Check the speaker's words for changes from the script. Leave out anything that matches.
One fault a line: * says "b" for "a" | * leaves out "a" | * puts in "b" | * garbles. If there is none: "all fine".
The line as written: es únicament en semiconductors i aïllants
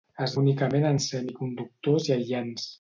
all fine